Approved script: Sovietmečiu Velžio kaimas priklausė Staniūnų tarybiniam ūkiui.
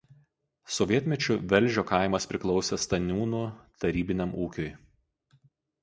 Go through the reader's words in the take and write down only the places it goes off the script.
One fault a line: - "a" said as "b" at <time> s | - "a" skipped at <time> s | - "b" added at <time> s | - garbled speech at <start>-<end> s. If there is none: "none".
none